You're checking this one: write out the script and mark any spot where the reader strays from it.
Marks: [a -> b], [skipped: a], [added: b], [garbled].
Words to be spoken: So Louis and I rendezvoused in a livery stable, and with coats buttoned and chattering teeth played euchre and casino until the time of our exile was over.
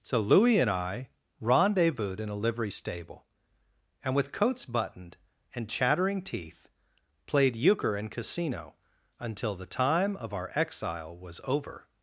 So Louis and I rendezvoused in a livery stable, and with coats buttoned and chattering teeth played euchre and casino until the time of our exile was over.